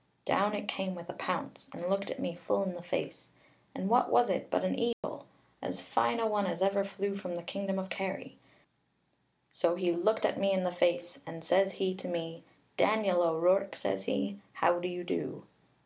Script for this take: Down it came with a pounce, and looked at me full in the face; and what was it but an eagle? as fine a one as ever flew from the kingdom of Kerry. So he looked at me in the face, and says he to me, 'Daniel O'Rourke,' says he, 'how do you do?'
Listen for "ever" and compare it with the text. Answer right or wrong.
right